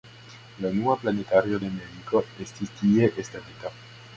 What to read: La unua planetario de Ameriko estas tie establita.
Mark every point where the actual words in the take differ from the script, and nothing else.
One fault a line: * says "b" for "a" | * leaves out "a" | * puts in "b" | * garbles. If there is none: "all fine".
* says "estis" for "estas"